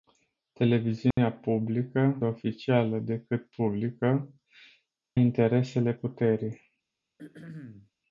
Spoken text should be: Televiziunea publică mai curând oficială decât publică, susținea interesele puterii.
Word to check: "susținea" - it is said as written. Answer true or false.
false